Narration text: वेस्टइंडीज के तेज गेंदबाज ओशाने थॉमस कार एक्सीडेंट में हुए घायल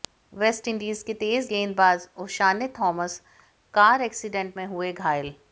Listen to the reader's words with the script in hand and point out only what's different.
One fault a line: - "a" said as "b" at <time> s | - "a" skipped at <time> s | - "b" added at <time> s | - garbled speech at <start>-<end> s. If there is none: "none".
none